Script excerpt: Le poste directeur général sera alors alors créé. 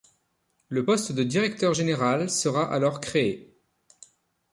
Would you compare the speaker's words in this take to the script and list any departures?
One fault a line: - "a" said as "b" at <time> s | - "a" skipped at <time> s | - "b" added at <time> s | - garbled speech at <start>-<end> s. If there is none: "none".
- "de" added at 1.1 s
- "alors" skipped at 3.0 s